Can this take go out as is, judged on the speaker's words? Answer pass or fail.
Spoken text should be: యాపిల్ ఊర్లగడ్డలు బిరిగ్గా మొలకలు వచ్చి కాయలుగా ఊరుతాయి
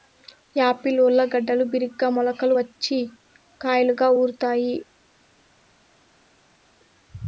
pass